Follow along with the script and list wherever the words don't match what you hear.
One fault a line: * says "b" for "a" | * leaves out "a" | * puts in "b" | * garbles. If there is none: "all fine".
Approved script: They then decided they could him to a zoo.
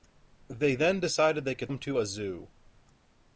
all fine